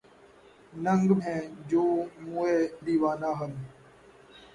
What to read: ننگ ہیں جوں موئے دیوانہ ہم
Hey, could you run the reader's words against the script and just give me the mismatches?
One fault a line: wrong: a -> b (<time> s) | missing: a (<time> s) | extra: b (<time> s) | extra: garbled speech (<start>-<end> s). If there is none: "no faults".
no faults